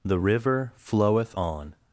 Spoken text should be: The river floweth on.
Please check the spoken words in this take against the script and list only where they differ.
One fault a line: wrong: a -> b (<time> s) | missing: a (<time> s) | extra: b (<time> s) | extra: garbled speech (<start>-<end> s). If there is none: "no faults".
no faults